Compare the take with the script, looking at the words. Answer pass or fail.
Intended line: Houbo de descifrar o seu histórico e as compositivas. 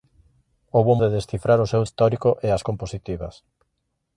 pass